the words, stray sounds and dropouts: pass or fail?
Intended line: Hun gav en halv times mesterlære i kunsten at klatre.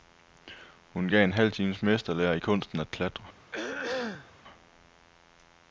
fail